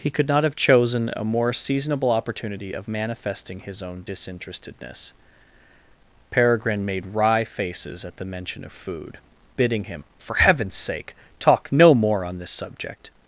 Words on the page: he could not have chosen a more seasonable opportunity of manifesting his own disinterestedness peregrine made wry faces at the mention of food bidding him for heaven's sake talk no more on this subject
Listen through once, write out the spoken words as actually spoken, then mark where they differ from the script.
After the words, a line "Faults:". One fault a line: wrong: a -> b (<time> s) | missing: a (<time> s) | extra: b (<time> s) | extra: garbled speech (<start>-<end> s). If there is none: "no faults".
he could not have chosen a more seasonable opportunity of manifesting his own disinterestedness peregrine made wry faces at the mention of food bidding him for heaven's sake talk no more on this subject
Faults:
no faults